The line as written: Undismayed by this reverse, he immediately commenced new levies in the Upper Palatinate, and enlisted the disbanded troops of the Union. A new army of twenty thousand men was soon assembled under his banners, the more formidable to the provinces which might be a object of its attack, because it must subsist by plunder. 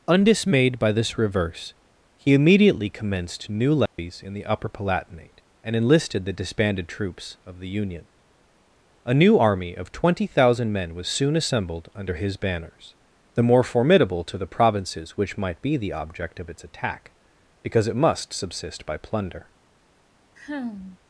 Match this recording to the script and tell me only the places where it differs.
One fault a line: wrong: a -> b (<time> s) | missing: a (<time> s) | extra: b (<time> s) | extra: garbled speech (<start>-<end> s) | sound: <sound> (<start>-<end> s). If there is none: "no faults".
sound: dropout (3.9-4.0 s)
wrong: a -> the (15.7 s)
sound: sigh (20.4-21.0 s)